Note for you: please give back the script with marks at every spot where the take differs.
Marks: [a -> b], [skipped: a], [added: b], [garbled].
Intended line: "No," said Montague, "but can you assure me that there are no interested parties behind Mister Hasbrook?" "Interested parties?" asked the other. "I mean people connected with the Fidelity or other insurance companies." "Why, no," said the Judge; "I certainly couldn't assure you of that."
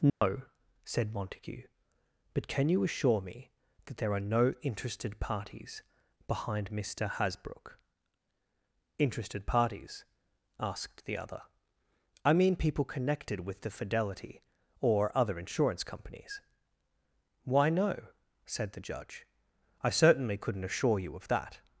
"No," said Montague, "but can you assure me that there are no interested parties behind Mister Hasbrook?" "Interested parties?" asked the other. "I mean people connected with the Fidelity or other insurance companies." "Why, no," said the Judge; "I certainly couldn't assure you of that."